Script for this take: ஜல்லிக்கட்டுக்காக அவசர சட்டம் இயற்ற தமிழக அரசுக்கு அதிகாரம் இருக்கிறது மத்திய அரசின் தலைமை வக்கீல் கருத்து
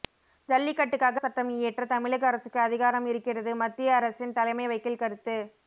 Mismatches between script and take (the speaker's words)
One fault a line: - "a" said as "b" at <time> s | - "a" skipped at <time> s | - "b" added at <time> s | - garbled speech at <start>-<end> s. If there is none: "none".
- "அவசர" skipped at 1.2 s